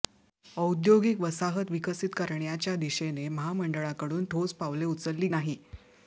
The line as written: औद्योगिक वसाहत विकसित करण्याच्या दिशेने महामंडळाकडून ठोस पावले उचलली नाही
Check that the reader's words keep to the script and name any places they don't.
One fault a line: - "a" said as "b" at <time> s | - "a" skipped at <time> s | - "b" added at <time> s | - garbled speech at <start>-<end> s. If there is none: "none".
none